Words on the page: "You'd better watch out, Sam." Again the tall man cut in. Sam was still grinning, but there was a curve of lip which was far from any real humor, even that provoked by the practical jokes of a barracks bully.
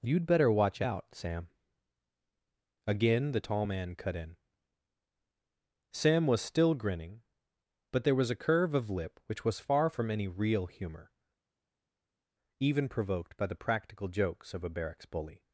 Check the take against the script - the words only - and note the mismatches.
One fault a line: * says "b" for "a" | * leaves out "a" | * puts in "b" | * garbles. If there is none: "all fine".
* leaves out "that"